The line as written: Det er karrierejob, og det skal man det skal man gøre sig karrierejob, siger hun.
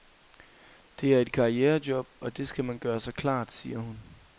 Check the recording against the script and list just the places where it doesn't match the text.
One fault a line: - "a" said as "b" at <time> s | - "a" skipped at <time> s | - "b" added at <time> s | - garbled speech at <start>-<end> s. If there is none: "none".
- "et" added at 1.2 s
- "det skal man" skipped at 2.8 s
- "karrierejob" said as "klart" at 3.1 s